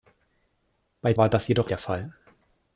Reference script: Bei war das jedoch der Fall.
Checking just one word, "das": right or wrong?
right